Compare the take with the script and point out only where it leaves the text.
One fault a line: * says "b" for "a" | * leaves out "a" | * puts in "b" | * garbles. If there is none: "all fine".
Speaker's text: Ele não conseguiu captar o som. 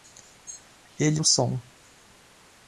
* leaves out "não conseguiu captar"